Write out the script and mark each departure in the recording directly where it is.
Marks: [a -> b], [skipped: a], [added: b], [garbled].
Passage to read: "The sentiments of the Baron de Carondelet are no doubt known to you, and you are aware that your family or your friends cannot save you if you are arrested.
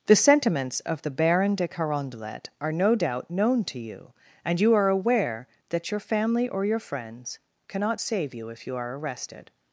"The sentiments of the Baron de Carondelet are no doubt known to you, and you are aware that your family or your friends cannot save you if you are arrested.